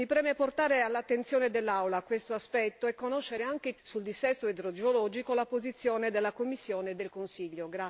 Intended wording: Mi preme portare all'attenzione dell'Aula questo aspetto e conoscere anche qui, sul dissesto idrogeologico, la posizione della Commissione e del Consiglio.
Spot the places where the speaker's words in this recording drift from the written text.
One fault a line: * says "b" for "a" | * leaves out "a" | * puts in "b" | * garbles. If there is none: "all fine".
* leaves out "qui"